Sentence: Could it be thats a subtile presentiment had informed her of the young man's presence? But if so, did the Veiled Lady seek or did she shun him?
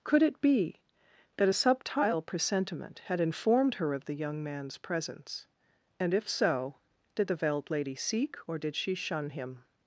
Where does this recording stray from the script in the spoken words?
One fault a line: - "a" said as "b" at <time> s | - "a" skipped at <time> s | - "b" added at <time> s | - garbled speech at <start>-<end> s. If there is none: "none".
- "thats" said as "that" at 1.4 s
- "But" said as "And" at 6.0 s